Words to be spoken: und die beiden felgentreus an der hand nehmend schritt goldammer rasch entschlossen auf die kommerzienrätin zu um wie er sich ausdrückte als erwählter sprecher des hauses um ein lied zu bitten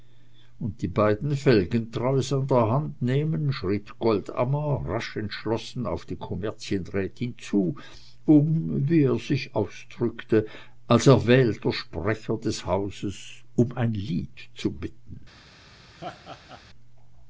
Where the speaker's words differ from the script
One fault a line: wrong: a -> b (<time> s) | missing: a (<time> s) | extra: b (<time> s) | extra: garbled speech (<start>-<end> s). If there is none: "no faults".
no faults